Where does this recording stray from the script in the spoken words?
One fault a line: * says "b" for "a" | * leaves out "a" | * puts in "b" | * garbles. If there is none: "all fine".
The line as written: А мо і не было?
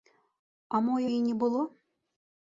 all fine